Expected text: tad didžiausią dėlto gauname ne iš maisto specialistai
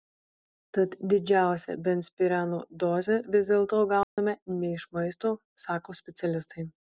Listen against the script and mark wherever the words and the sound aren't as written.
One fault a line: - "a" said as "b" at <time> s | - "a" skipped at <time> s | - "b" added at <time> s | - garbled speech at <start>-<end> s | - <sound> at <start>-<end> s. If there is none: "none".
- "benzpireno dozę vis" added at 1.9 s
- dropout at 4.0-4.2 s
- "sako" added at 5.7 s